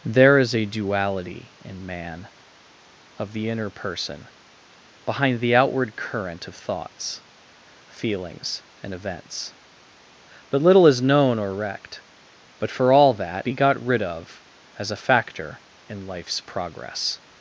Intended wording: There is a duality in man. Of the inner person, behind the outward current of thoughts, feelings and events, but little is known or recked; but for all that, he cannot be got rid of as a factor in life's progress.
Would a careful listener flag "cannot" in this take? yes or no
yes